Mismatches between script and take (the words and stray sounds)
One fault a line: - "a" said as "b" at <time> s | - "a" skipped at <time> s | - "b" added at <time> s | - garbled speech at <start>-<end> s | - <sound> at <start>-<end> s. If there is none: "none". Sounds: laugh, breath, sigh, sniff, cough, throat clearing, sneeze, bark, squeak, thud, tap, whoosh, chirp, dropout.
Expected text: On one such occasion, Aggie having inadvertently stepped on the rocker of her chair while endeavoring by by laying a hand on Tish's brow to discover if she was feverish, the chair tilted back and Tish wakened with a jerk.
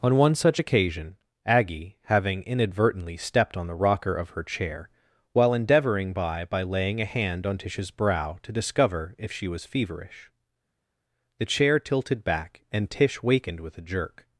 none